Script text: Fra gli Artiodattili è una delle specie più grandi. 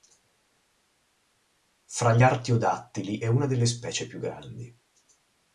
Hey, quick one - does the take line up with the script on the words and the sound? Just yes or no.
yes